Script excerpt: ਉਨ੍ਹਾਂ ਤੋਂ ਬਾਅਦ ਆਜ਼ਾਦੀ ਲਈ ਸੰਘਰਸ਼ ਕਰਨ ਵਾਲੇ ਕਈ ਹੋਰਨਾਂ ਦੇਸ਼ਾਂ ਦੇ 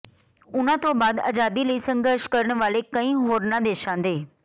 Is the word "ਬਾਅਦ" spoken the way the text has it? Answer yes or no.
yes